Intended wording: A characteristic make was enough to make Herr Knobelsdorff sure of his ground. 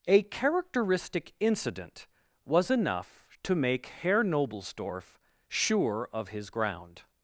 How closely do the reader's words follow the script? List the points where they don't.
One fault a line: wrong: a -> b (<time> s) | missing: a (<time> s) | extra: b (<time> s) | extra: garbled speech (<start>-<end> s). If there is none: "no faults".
wrong: make -> incident (1.4 s)